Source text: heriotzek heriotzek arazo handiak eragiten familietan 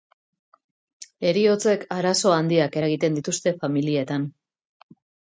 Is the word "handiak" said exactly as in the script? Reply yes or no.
yes